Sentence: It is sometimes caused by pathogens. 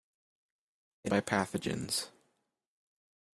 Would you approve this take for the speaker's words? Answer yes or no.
no